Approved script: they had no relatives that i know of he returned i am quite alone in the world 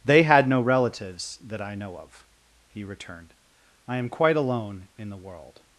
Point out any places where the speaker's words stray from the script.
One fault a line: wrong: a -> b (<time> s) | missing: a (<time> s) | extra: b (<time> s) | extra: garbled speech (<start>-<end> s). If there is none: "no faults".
no faults